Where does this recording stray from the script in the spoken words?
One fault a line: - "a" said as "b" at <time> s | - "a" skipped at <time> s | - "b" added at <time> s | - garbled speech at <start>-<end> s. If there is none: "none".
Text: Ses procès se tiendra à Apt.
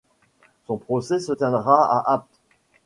- "Ses" said as "Son" at 0.7 s